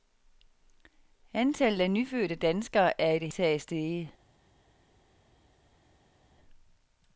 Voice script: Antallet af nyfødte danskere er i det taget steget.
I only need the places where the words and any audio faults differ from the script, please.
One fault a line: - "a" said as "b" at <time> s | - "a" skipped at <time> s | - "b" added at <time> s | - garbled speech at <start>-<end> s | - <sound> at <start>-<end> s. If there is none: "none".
none